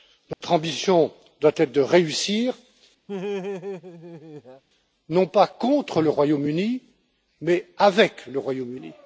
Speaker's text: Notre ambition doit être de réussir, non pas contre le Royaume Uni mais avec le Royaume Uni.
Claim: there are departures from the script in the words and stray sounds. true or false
true